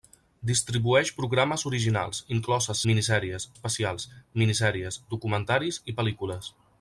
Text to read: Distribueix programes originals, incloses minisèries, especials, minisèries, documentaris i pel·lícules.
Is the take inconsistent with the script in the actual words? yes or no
no